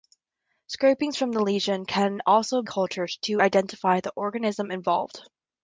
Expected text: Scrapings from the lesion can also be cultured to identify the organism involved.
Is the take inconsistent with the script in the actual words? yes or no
yes